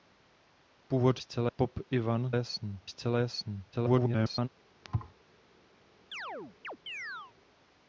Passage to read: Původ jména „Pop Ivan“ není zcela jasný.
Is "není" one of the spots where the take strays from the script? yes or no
yes